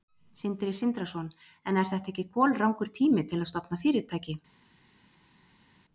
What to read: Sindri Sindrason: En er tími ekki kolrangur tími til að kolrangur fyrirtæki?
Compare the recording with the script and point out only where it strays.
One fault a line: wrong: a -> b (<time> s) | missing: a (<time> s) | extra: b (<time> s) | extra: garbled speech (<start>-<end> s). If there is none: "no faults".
wrong: tími -> þetta (1.9 s)
wrong: kolrangur -> stofna (3.5 s)